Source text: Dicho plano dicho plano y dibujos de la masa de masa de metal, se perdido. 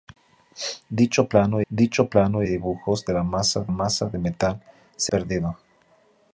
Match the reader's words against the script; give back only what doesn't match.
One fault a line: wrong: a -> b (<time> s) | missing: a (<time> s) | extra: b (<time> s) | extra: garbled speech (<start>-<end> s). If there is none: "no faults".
no faults